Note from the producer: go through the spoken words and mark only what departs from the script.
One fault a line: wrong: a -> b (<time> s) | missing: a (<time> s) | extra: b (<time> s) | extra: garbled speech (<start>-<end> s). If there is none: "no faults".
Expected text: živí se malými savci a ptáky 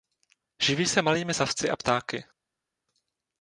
no faults